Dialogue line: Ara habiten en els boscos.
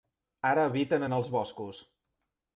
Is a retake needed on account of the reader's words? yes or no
no